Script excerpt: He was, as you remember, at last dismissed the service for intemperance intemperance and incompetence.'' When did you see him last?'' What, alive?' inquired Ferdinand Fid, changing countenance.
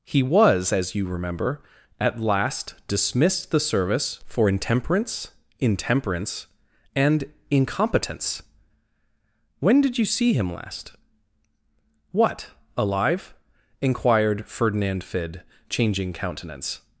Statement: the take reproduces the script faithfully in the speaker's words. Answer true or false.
true